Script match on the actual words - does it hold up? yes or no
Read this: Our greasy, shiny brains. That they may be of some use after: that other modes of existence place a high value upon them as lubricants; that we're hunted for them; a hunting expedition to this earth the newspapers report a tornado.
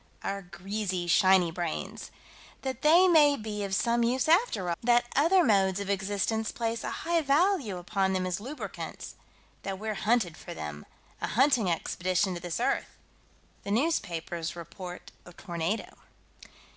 yes